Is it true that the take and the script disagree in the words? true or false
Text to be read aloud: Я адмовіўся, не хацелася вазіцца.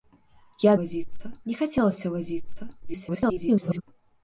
true